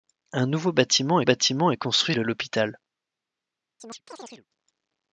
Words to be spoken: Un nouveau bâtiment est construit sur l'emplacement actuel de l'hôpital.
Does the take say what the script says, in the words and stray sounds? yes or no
no